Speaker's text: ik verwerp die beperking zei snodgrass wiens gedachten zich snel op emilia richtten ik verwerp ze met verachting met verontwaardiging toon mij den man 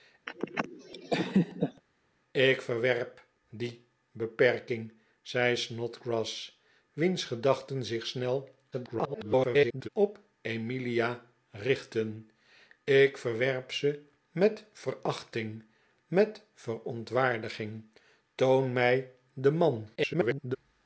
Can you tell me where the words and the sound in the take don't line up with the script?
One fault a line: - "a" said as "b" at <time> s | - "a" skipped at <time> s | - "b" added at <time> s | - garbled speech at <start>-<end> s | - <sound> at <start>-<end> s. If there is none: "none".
- laugh at 0.3-1.8 s
- garbled speech at 8.7-9.9 s
- garbled speech at 20.0-20.6 s